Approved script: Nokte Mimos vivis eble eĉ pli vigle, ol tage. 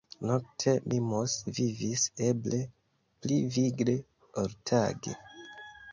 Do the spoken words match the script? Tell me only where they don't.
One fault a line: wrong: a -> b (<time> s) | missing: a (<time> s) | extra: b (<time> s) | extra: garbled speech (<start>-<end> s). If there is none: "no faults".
missing: eĉ (2.6 s)